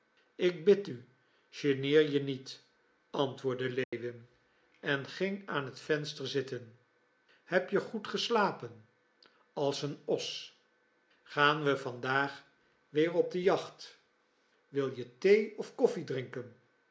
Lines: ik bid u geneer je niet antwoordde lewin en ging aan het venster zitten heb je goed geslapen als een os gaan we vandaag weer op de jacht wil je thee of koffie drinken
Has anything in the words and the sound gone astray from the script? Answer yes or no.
yes